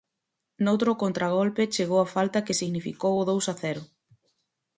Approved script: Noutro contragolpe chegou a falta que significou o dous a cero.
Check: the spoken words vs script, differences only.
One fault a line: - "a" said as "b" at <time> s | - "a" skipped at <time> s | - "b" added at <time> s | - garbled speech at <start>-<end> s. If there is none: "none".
none